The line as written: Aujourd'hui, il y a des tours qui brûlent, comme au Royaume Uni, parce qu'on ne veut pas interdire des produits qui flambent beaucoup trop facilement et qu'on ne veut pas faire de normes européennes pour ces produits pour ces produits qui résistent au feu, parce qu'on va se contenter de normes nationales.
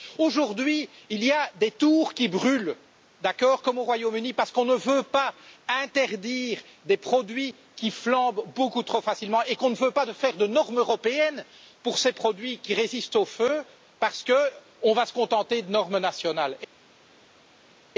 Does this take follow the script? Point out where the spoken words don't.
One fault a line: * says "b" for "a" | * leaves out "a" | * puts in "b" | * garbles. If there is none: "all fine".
* leaves out "pour ces produits"